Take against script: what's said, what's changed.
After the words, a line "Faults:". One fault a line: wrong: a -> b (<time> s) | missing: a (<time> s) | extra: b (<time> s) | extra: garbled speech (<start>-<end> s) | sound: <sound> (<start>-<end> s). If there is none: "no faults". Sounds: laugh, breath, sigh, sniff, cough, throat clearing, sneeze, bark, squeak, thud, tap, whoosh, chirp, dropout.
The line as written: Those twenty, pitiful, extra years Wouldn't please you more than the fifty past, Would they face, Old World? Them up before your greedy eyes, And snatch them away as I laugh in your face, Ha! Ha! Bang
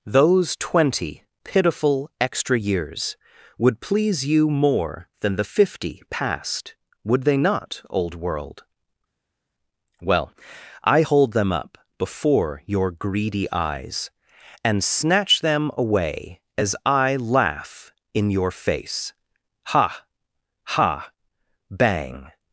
Those twenty, pitiful, extra years Would please you more than the fifty past, Would they not, Old World? Well, I hold them up before your greedy eyes, And snatch them away as I laugh in your face, Ha! Ha! Bang
Faults:
wrong: Wouldn't -> Would (3.6 s)
wrong: face -> not (7.4 s)
extra: Well I hold (10.0 s)